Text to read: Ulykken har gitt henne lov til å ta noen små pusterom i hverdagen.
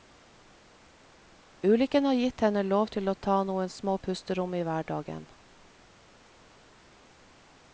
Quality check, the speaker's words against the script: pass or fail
pass